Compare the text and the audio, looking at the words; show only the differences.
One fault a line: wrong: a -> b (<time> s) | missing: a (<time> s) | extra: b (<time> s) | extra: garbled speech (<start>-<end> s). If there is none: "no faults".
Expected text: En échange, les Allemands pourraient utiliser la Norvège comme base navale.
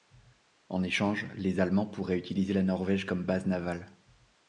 no faults